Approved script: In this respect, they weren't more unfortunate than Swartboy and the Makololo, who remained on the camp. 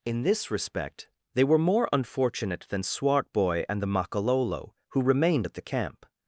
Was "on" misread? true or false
true